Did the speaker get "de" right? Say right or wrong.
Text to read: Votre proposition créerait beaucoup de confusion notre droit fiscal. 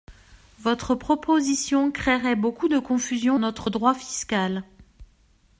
right